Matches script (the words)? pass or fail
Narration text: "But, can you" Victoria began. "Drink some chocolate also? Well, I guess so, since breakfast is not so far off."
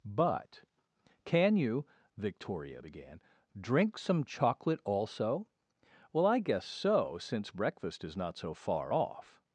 pass